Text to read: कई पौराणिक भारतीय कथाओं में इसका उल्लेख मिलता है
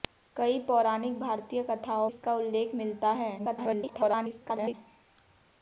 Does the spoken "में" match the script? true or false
false